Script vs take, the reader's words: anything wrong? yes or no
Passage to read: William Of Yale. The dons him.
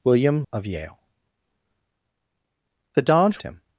no